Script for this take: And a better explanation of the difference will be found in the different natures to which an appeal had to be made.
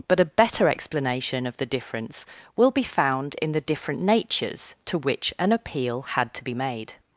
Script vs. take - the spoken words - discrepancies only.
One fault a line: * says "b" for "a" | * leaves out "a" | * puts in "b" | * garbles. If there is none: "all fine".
* says "But" for "And"